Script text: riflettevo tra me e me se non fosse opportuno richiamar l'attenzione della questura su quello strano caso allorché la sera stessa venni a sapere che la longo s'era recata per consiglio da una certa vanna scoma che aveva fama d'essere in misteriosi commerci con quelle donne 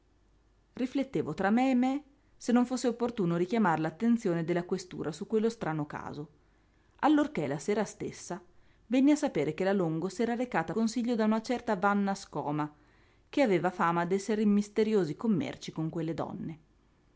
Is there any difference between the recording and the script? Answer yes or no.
yes